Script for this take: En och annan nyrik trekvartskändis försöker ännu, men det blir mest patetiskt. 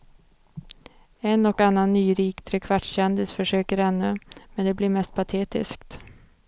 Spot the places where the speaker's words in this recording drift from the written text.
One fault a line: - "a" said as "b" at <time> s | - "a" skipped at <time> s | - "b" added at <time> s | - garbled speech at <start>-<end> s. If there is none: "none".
none